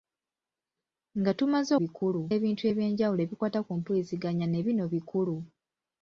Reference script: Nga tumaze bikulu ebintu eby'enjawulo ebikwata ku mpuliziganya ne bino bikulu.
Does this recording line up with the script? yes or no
yes